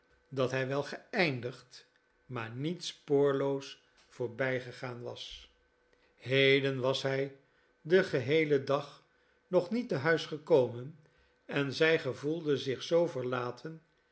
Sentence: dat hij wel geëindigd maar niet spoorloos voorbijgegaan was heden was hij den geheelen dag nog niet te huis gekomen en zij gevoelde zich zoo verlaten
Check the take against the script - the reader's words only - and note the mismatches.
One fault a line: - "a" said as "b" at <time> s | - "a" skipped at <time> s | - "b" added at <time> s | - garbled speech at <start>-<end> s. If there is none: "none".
none